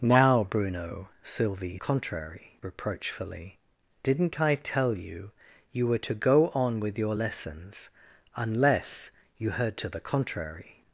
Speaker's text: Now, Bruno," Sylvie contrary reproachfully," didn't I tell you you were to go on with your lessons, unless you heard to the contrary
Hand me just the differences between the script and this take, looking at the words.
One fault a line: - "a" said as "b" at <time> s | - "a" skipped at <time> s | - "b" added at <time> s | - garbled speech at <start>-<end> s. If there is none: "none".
none